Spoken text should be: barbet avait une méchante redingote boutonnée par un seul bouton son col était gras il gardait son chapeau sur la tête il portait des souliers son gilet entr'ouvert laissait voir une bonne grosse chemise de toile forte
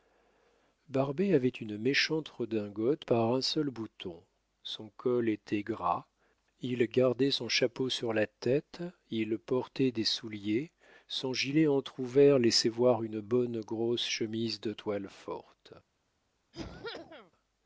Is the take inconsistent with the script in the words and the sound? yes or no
yes